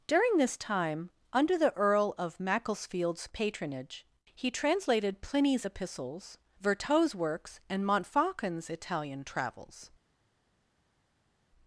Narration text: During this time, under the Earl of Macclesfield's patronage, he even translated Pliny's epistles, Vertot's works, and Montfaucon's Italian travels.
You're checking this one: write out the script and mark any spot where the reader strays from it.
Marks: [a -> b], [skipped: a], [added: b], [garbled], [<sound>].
During this time, under the Earl of Macclesfield's patronage, he [skipped: even] translated Pliny's epistles, Vertot's works, and Montfaucon's Italian travels.